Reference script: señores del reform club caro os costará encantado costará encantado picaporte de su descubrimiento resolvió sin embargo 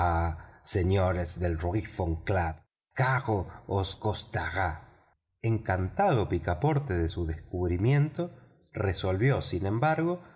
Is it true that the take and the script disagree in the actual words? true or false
true